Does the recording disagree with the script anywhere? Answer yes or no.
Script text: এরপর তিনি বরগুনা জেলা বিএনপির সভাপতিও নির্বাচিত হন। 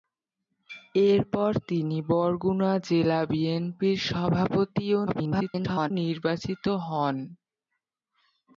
yes